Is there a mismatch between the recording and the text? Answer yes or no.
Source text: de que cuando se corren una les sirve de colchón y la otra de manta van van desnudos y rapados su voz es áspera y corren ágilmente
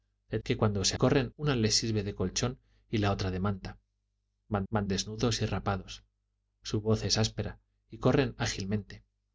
no